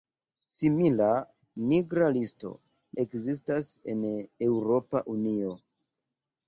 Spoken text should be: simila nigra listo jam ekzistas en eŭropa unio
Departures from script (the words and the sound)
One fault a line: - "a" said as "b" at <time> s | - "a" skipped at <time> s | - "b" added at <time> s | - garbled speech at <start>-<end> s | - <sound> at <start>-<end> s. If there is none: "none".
- "jam" skipped at 2.5 s